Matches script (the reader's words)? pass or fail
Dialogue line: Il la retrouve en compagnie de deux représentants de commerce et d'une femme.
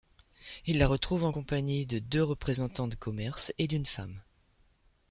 pass